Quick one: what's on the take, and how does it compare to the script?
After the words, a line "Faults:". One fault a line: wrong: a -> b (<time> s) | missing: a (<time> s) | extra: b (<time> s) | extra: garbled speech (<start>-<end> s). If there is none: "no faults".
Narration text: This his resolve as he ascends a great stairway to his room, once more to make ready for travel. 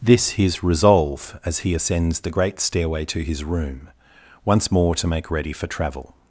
This his resolve as he ascends the great stairway to his room, once more to make ready for travel.
Faults:
wrong: a -> the (2.2 s)